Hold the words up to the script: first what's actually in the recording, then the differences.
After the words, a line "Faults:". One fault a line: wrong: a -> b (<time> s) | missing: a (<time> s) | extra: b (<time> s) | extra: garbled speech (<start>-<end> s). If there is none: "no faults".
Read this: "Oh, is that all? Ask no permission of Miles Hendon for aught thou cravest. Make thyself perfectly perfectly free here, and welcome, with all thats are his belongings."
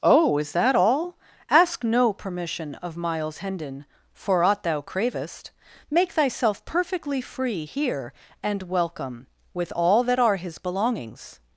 "Oh, is that all? Ask no permission of Miles Hendon for aught thou cravest. Make thyself perfectly free here, and welcome, with all that are his belongings."
Faults:
missing: perfectly (7.2 s)
wrong: thats -> that (10.0 s)